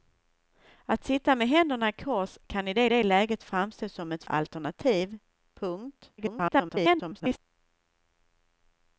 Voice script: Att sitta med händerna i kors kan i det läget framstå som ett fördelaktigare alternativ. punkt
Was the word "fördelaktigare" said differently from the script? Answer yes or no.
yes